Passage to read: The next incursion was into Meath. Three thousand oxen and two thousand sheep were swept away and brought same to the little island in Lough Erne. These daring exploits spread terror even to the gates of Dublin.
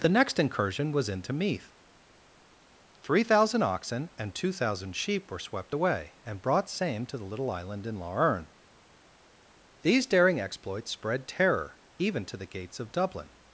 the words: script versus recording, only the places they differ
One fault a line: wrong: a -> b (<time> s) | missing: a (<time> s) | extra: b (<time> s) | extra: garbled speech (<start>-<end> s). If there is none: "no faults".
no faults